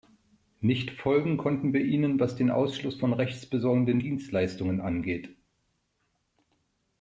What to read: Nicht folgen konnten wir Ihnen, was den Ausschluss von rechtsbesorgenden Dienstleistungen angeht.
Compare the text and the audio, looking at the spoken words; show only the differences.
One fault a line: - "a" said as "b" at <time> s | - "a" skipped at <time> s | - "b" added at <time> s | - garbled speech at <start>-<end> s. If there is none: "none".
none